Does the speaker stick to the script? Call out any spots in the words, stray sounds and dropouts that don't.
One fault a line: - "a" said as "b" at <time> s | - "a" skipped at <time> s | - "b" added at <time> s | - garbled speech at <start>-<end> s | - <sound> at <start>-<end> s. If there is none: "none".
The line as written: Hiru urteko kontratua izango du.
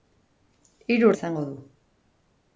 - "urteko kontratua" skipped at 1.1 s